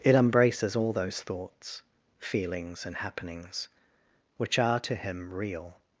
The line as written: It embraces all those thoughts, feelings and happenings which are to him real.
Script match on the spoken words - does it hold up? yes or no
yes